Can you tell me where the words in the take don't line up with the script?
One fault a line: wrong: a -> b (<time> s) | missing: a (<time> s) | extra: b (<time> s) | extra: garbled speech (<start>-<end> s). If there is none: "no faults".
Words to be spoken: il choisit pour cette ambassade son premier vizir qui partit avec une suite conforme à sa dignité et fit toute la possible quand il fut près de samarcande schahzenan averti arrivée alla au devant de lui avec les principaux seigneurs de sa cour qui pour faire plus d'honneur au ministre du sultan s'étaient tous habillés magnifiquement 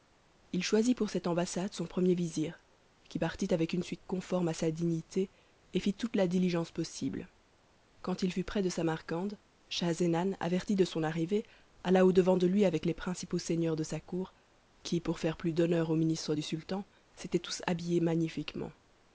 extra: diligence (6.3 s)
extra: de son (10.7 s)